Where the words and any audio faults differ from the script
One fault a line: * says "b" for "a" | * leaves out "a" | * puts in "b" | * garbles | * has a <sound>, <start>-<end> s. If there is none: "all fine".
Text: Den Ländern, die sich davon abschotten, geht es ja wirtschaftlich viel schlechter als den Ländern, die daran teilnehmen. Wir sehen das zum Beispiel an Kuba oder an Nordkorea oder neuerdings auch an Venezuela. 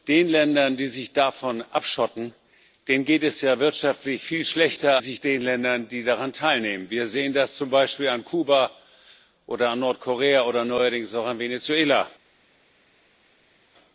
* says "sich" for "als"